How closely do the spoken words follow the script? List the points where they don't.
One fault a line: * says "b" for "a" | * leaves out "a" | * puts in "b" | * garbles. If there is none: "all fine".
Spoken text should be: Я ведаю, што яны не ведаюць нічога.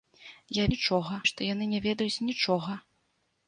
* says "нічога" for "ведаю"